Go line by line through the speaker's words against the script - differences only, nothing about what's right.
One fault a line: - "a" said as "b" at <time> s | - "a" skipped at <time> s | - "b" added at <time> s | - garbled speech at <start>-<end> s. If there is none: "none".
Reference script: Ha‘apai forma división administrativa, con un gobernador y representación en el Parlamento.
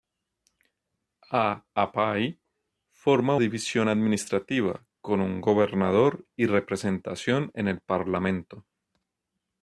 none